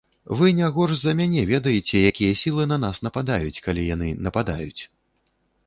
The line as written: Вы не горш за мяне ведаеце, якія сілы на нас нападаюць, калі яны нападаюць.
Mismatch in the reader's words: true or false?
false